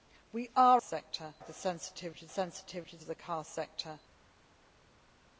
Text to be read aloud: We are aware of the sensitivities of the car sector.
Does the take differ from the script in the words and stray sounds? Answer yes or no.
yes